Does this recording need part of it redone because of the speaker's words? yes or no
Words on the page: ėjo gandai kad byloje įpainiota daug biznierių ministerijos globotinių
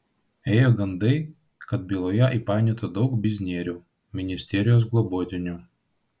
no